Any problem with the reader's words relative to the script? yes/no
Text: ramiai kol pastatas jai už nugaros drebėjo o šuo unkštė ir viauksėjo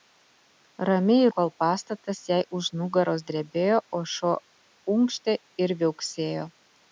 no